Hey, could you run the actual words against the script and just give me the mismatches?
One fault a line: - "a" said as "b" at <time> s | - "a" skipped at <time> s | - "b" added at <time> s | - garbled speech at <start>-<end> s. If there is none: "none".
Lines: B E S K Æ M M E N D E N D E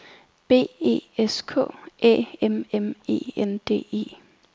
- "N D E" skipped at 4.1 s